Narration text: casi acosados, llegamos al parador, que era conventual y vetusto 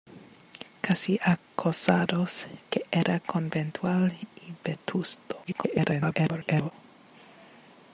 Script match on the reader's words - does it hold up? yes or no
no